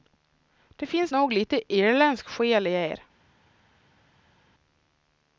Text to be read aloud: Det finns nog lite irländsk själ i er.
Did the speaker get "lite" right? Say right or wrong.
right